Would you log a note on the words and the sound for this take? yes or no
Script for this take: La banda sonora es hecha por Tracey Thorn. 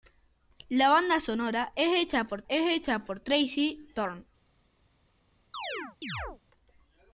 yes